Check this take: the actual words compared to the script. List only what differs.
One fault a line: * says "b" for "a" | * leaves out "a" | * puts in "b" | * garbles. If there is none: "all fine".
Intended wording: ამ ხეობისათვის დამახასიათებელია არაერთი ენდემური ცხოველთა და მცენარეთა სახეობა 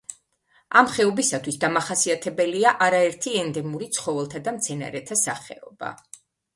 all fine